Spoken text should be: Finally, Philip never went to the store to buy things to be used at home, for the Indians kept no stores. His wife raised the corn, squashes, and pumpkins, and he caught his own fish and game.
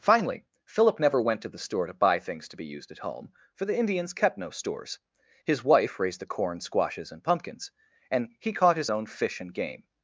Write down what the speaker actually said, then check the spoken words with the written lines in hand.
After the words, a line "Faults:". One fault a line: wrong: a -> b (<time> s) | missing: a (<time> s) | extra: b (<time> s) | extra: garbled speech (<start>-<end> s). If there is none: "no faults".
Finally, Philip never went to the store to buy things to be used at home, for the Indians kept no stores. His wife raised the corn, squashes, and pumpkins, and he caught his own fish and game.
Faults:
no faults